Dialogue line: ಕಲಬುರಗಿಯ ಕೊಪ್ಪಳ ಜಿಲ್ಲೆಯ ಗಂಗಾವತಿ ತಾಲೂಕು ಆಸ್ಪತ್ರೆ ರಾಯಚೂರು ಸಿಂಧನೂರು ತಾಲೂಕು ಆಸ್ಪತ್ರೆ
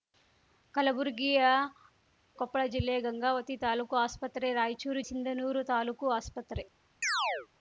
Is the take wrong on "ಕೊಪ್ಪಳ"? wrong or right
right